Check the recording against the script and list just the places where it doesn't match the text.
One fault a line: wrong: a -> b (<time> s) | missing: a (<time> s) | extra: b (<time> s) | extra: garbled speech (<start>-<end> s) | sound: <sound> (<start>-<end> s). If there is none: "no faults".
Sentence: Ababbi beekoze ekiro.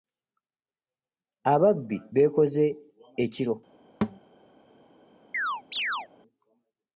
sound: thud (4.0-4.2 s)
sound: chirp (5.3-6.1 s)